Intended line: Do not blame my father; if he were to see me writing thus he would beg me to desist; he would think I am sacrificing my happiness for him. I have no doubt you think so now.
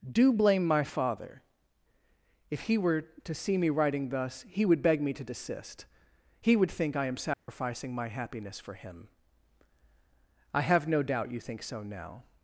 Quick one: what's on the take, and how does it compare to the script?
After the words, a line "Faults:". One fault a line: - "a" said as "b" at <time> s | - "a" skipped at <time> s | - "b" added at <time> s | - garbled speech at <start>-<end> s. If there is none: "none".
Do blame my father; if he were to see me writing thus he would beg me to desist; he would think I am sacrificing my happiness for him. I have no doubt you think so now.
Faults:
- "not" skipped at 0.3 s